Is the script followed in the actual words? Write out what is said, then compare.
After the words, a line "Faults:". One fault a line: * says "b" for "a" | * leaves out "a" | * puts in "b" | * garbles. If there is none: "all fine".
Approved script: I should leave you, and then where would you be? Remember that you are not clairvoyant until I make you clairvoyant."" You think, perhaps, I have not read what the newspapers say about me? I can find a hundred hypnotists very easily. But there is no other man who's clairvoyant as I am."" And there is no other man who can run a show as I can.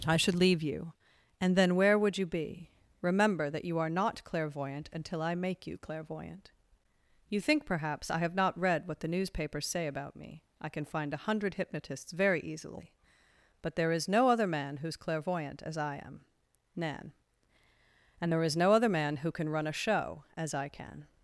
I should leave you, and then where would you be? Remember that you are not clairvoyant until I make you clairvoyant."" You think, perhaps, I have not read what the newspapers say about me? I can find a hundred hypnotists very easily. But there is no other man who's clairvoyant as I am."" nan And there is no other man who can run a show as I can.
Faults:
* puts in "nan"